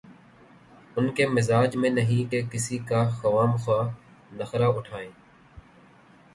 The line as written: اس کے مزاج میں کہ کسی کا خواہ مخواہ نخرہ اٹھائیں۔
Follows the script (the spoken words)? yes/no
no